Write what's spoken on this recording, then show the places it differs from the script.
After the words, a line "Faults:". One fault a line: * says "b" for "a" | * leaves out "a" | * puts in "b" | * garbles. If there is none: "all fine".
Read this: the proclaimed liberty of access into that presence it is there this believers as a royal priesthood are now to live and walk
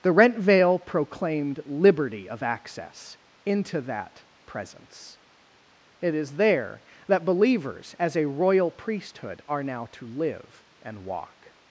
the rent veil proclaimed liberty of access into that presence it is there that believers as a royal priesthood are now to live and walk
Faults:
* puts in "rent veil"
* says "that" for "this"